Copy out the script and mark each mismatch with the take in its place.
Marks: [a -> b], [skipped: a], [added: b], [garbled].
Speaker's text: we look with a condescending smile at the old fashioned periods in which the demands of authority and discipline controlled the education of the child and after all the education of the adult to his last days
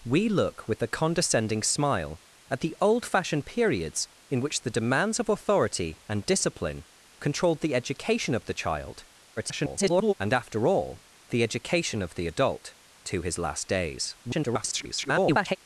we look with a condescending smile at the old fashioned periods in which the demands of authority and discipline controlled the education of the child [garbled] and after all the education of the adult to his last days [garbled]